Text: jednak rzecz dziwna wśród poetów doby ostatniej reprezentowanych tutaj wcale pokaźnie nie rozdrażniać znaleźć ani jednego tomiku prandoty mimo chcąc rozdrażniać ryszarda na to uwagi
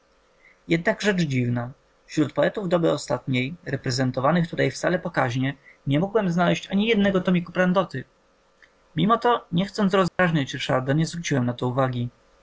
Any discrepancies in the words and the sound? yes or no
yes